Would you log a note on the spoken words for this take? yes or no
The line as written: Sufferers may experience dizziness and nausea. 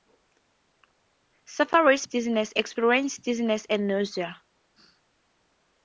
yes